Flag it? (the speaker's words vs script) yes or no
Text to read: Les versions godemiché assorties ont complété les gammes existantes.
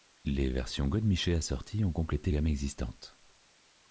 yes